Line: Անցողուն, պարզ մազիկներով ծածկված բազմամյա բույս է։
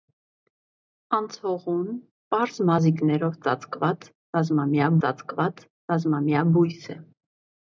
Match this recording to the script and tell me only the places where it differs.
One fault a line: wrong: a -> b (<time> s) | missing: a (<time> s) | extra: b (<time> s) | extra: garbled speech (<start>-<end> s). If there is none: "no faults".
extra: ծածկված բազմամյա (5.0 s)